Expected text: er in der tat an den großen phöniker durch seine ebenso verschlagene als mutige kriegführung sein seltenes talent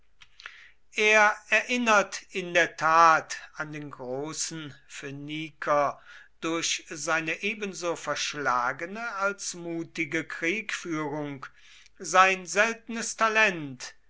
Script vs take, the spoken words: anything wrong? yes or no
yes